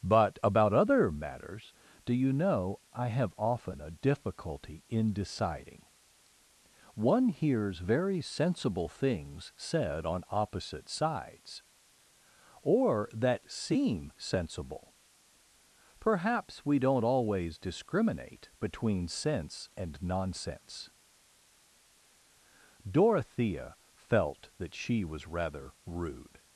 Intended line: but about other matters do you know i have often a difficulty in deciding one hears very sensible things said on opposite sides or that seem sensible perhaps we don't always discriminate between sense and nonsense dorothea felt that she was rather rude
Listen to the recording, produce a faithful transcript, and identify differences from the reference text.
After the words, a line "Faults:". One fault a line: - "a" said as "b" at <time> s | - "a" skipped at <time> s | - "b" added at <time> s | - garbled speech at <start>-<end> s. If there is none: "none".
but about other matters do you know i have often a difficulty in deciding one hears very sensible things said on opposite sides or that seem sensible perhaps we don't always discriminate between sense and nonsense dorothea felt that she was rather rude
Faults:
none